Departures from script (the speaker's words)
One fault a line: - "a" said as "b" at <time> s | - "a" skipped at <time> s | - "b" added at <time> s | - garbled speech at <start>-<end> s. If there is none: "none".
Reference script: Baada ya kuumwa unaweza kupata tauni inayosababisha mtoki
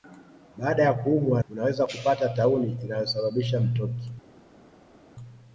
none